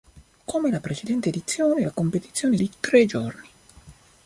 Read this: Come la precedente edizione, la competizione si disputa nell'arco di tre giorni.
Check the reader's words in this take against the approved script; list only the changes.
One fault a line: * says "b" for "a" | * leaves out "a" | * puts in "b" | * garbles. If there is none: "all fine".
* leaves out "si disputa nell'arco"